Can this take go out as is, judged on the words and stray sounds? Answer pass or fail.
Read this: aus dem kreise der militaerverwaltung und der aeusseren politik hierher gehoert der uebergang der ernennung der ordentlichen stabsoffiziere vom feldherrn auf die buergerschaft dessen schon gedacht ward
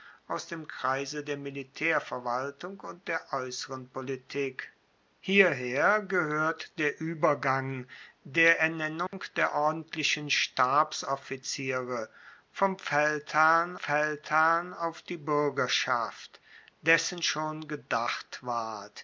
fail